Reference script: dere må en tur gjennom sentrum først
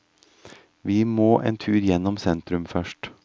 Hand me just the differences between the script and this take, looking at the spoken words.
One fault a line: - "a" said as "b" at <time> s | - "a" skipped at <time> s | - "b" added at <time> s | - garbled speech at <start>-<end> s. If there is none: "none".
- "dere" said as "vi" at 0.8 s